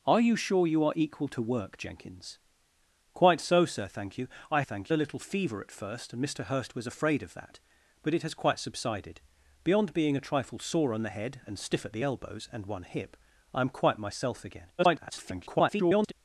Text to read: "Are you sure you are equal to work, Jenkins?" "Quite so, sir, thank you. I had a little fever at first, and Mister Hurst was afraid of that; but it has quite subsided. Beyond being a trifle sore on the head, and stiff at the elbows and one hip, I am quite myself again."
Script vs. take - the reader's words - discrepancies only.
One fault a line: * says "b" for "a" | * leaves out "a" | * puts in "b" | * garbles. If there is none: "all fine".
* says "thank" for "had"
* garbles